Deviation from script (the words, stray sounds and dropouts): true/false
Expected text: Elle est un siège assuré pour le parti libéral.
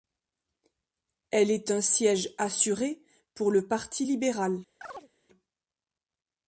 true